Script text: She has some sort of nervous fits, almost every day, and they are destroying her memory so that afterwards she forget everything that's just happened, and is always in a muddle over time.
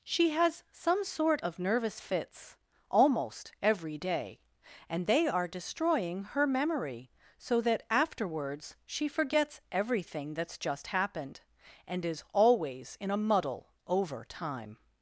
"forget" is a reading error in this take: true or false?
true